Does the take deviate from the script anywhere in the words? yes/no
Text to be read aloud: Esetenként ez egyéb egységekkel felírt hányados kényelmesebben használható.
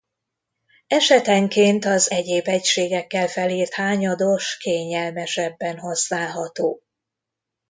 yes